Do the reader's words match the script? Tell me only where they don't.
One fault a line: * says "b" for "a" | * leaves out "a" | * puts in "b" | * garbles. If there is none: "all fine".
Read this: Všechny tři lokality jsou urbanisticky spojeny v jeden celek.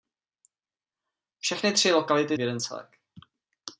* leaves out "jsou urbanisticky spojeny"